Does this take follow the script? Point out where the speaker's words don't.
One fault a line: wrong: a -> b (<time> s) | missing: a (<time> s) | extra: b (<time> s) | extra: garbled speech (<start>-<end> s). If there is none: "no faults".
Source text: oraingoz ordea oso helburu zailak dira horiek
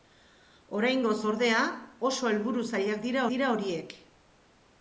extra: dira (3.3 s)